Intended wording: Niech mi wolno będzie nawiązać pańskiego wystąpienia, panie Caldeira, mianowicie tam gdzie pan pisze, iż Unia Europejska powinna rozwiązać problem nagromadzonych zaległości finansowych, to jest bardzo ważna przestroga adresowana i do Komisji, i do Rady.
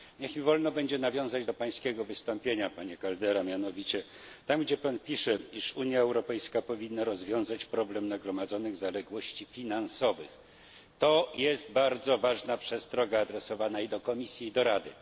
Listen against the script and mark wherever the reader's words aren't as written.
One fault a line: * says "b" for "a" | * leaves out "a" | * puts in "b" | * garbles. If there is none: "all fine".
* puts in "do"